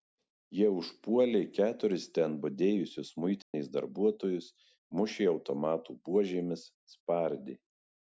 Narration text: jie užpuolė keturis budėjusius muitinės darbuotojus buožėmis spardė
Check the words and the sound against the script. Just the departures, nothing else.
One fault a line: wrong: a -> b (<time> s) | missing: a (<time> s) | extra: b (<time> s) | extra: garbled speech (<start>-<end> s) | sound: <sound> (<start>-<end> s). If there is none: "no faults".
extra: ten (2.1 s)
sound: dropout (3.4-3.5 s)
extra: mušė automatų (5.0 s)